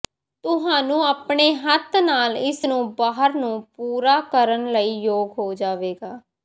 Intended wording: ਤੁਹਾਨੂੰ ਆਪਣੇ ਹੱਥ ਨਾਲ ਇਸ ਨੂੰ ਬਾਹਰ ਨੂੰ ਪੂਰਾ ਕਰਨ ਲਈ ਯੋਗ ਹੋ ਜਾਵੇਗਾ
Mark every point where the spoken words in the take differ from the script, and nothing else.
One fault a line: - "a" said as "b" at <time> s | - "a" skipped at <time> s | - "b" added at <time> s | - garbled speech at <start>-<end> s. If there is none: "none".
none